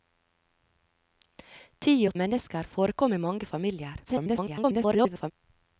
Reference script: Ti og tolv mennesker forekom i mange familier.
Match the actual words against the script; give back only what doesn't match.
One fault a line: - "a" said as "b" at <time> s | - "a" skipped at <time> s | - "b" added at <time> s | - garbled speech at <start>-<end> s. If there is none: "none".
- "tolv" skipped at 2.1 s
- garbled speech at 4.0-5.3 s